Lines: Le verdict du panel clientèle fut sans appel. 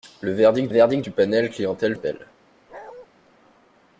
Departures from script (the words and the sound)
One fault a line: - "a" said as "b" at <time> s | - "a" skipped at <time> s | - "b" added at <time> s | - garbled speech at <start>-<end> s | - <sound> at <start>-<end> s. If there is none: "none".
- "verdict" added at 0.7 s
- "fut sans" skipped at 1.9 s
- bark at 2.7-3.1 s